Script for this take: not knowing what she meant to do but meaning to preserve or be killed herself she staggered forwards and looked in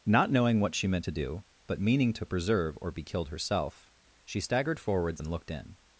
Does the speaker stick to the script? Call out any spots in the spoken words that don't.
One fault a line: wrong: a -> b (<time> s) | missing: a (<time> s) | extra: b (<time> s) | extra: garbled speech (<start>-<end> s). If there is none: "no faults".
no faults